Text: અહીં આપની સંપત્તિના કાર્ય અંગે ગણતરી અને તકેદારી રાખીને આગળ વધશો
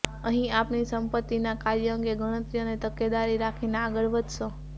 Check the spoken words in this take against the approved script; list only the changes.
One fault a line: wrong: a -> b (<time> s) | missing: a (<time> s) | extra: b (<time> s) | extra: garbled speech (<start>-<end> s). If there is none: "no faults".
no faults